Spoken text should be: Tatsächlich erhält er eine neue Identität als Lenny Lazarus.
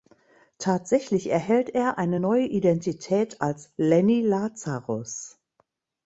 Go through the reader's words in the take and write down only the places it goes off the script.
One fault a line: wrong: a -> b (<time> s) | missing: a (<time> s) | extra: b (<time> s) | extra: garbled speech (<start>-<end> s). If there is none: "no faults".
no faults